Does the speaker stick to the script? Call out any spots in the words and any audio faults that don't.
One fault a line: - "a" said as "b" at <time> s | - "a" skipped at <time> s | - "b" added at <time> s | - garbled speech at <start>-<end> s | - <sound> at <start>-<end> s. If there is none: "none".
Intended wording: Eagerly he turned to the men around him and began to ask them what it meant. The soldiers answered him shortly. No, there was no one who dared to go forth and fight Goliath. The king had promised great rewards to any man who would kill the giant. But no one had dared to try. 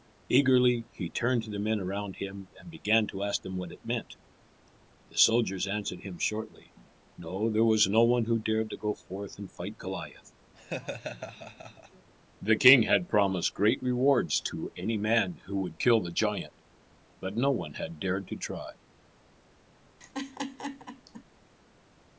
- laugh at 10.5-12.1 s
- laugh at 20.0-21.2 s